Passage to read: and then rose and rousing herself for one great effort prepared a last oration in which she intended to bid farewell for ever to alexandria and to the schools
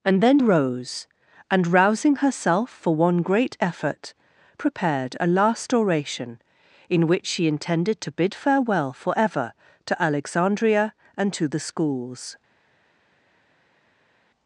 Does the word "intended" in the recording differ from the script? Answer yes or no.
no